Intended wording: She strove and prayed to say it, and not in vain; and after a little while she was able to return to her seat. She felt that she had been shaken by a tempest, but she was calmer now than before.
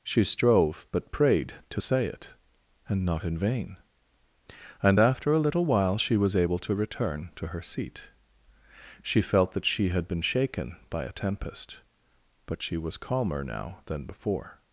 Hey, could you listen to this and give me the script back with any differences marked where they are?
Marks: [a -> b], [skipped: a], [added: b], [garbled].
She strove [and -> but] prayed to say it, and not in vain; and after a little while she was able to return to her seat. She felt that she had been shaken by a tempest, but she was calmer now than before.